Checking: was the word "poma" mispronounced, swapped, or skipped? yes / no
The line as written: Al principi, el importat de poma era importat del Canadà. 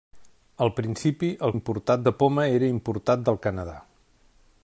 no